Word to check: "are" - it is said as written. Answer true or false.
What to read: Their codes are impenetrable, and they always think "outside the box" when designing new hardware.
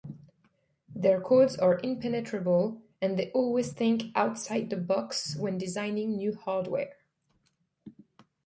true